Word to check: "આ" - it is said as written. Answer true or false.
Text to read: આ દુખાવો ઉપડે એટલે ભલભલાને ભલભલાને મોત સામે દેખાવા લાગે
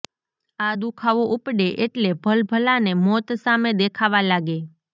true